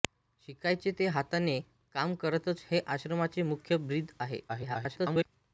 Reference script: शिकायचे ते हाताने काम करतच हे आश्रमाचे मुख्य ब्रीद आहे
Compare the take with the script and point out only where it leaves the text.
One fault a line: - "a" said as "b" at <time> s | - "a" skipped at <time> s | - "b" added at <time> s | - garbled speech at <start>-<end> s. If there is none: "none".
- garbled speech at 4.5-5.3 s